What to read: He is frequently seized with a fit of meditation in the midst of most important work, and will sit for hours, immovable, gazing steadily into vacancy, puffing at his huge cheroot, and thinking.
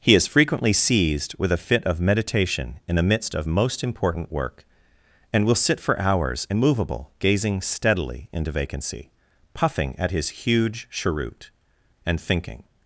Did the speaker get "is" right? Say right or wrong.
right